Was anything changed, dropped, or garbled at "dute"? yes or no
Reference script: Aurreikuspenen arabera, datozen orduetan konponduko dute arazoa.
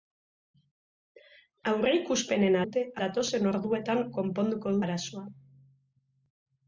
yes